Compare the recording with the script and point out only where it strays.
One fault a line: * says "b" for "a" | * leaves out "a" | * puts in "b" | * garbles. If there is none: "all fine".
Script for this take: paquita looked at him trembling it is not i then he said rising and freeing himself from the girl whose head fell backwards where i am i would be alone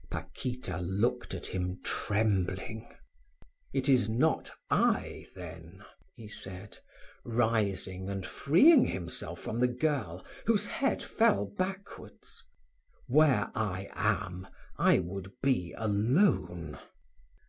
all fine